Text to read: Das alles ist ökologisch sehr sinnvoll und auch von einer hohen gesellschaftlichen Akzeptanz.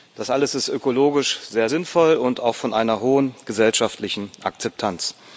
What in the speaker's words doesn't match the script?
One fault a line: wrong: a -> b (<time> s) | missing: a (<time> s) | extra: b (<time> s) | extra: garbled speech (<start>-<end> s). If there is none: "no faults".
no faults